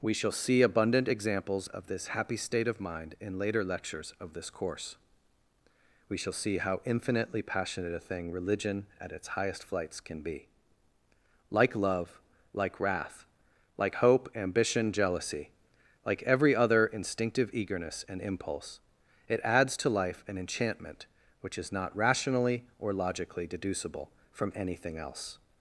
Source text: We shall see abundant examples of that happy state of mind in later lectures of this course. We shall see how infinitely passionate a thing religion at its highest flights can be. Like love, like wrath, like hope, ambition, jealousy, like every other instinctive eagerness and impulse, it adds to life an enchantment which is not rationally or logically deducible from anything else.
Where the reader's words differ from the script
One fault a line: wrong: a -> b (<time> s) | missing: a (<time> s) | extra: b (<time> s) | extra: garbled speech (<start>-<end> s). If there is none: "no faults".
wrong: that -> this (1.9 s)